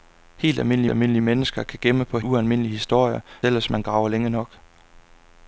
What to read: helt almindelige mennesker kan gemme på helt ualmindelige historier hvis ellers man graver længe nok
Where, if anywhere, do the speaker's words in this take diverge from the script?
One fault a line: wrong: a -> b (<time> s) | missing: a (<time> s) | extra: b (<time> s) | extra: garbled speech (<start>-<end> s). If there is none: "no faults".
extra: almindelige (0.9 s)
missing: helt (2.2 s)
missing: hvis (3.2 s)